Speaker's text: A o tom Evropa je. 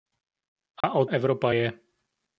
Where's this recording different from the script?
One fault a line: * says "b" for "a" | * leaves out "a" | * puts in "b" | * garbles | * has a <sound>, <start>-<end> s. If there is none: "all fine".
* has a dropout, 0.8-0.8 s
* leaves out "tom"